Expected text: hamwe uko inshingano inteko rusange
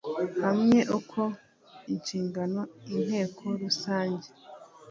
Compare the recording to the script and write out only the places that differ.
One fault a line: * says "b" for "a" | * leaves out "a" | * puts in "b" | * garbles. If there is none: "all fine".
all fine